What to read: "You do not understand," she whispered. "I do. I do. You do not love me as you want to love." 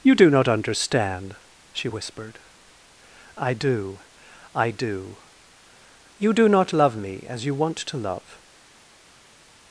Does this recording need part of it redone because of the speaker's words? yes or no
no